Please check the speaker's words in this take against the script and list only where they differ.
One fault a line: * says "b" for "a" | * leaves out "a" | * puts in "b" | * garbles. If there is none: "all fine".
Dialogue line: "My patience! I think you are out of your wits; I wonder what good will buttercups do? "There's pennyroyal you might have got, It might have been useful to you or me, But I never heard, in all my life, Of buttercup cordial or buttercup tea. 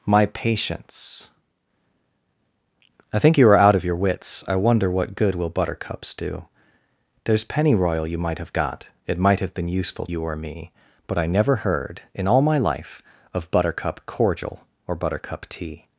* leaves out "to"